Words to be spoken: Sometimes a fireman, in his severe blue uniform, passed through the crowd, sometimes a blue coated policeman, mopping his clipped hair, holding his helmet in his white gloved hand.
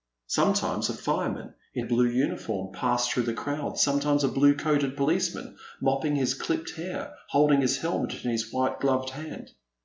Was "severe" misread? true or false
true